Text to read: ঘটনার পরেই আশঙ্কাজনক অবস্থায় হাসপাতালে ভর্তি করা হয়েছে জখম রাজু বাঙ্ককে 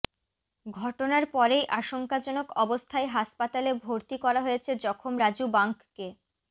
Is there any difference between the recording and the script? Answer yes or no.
no